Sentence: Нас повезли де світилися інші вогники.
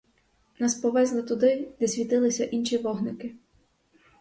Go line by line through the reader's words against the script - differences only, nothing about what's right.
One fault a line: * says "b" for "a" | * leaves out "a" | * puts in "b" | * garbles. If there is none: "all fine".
* puts in "туди"